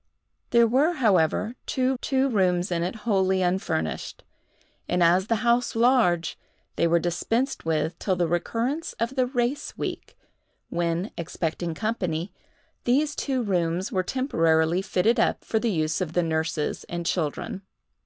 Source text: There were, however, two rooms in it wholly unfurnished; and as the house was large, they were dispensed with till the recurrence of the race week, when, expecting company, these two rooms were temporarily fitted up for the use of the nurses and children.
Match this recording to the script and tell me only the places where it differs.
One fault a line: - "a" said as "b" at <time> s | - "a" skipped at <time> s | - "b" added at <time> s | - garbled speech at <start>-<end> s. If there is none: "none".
- "two" added at 2.0 s
- "was" skipped at 5.8 s